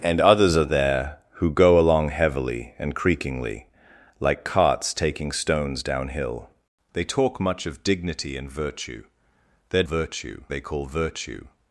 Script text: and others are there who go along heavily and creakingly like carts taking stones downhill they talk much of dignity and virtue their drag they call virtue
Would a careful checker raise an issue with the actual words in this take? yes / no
yes